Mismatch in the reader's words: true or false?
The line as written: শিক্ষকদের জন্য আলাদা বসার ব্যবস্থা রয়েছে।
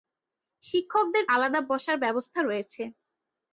true